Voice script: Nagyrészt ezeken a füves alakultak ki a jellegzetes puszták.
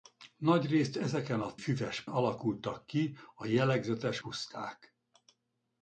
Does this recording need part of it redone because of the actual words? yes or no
no